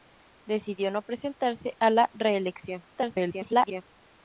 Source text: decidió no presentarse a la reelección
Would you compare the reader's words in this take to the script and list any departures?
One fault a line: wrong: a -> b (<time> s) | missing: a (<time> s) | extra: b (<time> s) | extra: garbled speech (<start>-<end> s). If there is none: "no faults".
extra: garbled speech (2.9-3.8 s)